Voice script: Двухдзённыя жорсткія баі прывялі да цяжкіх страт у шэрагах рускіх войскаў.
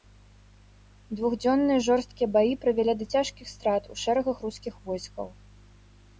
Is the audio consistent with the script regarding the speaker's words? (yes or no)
yes